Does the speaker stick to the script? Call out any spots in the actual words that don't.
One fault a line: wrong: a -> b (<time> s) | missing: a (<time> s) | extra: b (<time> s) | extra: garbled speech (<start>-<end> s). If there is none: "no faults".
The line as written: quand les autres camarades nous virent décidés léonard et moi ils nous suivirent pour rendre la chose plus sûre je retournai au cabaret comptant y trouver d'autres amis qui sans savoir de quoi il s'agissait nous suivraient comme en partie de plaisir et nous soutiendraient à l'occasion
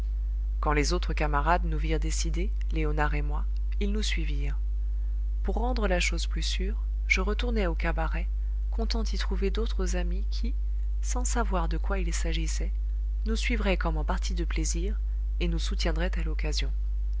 no faults